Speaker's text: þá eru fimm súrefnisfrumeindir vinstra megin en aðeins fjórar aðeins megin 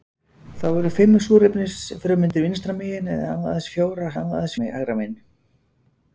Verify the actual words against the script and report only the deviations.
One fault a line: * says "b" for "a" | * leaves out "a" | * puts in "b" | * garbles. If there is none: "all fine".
all fine